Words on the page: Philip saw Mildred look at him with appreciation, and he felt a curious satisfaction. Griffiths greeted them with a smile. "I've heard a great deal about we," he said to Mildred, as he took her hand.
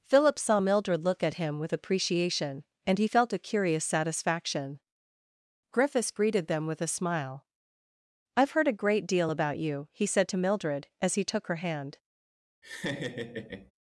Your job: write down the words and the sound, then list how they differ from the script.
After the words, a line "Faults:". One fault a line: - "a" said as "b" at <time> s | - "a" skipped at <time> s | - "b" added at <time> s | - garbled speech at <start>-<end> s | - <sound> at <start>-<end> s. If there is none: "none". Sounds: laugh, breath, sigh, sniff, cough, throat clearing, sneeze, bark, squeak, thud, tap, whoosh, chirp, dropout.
Philip saw Mildred look at him with appreciation, and he felt a curious satisfaction. Griffiths greeted them with a smile. "I've heard a great deal about you," he said to Mildred, as he took her hand.
Faults:
- "we" said as "you" at 9.6 s
- laugh at 12.6-13.7 s